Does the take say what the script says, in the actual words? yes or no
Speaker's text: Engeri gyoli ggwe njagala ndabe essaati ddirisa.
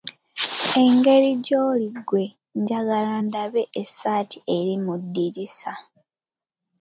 no